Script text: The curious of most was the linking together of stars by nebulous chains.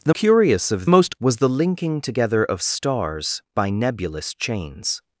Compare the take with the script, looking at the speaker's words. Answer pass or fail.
pass